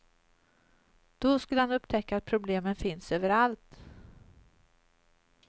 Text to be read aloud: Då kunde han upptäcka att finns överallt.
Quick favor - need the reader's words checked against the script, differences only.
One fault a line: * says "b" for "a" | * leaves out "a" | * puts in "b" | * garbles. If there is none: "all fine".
* says "skulle" for "kunde"
* puts in "problemen"